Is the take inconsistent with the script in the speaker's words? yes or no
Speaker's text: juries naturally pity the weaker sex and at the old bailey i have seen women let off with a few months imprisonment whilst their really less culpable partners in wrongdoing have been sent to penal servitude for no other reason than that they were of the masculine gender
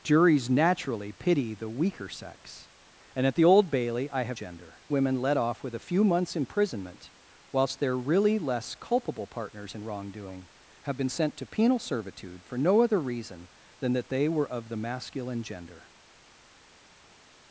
yes